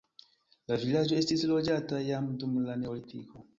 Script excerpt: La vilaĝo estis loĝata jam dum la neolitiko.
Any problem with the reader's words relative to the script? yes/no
no